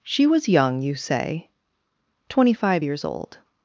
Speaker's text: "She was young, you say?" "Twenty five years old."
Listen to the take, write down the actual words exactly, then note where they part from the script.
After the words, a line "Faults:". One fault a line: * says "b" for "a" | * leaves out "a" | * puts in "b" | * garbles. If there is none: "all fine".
"She was young, you say?" "Twenty five years old."
Faults:
all fine